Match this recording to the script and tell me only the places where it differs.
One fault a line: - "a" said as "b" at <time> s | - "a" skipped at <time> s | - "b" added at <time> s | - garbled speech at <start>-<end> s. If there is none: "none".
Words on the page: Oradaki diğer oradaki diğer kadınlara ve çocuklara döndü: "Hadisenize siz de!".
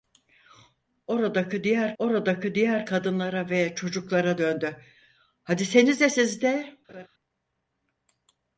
none